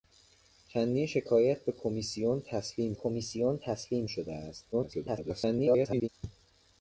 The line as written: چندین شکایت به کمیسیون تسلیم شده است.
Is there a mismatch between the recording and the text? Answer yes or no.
yes